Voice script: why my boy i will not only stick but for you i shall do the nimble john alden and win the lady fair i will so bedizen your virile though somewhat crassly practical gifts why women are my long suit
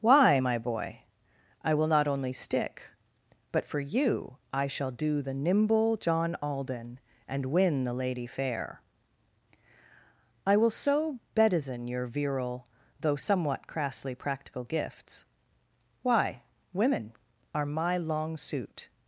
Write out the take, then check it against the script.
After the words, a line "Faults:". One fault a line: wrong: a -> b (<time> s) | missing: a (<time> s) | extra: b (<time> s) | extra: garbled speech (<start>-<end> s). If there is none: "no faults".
why my boy i will not only stick but for you i shall do the nimble john alden and win the lady fair i will so bedizen your virile though somewhat crassly practical gifts why women are my long suit
Faults:
no faults